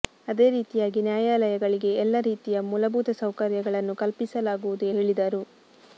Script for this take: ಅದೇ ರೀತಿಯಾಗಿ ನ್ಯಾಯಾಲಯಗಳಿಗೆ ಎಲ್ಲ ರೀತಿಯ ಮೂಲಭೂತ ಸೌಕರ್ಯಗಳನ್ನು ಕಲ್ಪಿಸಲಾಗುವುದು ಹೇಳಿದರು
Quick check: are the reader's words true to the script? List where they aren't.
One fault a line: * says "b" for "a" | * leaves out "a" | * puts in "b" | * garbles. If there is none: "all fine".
all fine